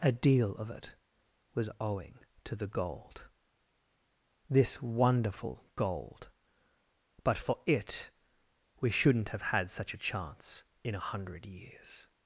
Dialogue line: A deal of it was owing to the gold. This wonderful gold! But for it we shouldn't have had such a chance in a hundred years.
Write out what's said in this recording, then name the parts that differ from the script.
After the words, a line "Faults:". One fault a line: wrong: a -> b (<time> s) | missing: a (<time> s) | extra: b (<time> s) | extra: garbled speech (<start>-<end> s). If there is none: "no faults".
A deal of it was owing to the gold. This wonderful gold! But for it we shouldn't have had such a chance in a hundred years.
Faults:
no faults